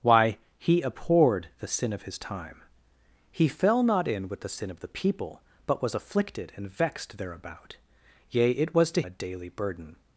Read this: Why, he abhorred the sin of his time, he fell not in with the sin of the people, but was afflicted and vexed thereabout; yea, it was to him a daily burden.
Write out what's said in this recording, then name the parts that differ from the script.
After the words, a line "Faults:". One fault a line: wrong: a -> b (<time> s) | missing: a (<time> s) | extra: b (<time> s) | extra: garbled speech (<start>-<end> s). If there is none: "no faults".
Why, he abhorred the sin of his time, he fell not in with the sin of the people, but was afflicted and vexed thereabout; yea, it was to a daily burden.
Faults:
missing: him (9.0 s)